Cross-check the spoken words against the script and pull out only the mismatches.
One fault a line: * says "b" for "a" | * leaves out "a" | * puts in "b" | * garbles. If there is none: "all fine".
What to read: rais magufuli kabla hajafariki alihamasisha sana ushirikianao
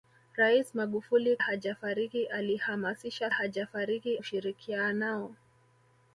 * leaves out "kabla"
* says "hajafariki" for "sana"